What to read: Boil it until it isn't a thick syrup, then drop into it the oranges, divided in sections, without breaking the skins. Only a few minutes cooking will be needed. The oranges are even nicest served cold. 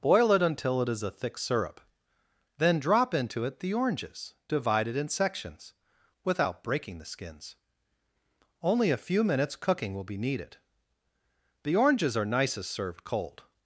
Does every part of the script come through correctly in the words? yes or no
no